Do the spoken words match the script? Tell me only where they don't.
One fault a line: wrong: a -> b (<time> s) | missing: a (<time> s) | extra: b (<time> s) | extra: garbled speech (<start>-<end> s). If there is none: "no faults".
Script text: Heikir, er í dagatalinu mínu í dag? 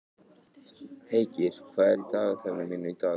extra: hvað (1.8 s)